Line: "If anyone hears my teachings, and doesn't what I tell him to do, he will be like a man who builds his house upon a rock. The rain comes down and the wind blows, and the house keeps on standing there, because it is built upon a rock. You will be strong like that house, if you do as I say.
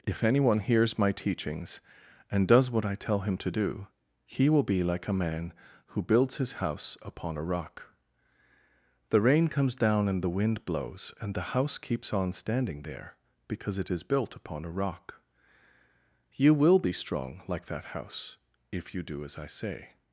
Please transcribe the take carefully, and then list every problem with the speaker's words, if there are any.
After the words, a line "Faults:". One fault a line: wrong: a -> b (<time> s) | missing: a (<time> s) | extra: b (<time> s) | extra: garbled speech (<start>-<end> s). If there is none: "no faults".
"If anyone hears my teachings, and does what I tell him to do, he will be like a man who builds his house upon a rock. The rain comes down and the wind blows, and the house keeps on standing there, because it is built upon a rock. You will be strong like that house, if you do as I say.
Faults:
wrong: doesn't -> does (2.5 s)